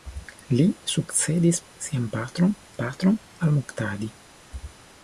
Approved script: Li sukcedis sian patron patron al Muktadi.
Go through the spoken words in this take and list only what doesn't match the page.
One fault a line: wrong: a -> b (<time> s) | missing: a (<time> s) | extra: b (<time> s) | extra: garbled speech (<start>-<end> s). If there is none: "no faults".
no faults